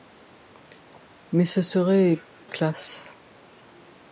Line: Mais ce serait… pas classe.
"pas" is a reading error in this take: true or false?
true